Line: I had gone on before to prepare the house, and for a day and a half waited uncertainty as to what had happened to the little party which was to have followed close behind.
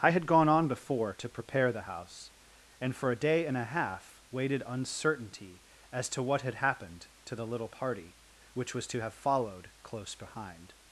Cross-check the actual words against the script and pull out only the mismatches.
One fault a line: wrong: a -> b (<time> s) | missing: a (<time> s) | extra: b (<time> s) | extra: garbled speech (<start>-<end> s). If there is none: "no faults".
no faults